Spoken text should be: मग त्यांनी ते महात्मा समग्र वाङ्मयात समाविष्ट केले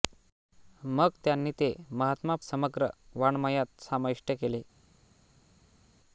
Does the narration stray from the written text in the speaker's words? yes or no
no